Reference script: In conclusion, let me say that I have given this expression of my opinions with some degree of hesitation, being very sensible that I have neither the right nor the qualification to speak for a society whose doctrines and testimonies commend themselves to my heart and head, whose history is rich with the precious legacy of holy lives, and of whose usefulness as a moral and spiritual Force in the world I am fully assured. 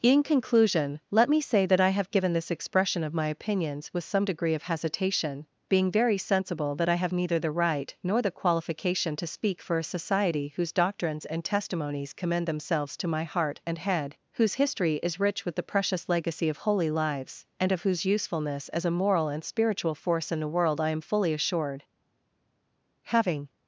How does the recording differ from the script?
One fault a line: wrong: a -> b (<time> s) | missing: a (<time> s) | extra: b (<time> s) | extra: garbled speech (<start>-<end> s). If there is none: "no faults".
extra: Having (23.0 s)